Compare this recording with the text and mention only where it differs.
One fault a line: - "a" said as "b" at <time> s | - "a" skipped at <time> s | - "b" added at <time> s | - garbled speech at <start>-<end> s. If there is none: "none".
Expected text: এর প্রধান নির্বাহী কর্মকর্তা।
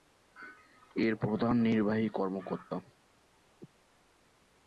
none